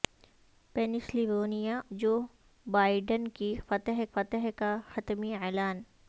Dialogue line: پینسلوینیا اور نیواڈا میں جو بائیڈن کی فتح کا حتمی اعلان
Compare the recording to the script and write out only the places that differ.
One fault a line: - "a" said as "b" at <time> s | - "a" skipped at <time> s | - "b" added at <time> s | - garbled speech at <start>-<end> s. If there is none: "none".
- "اور نیواڈا میں" skipped at 1.8 s
- "فتح" added at 4.1 s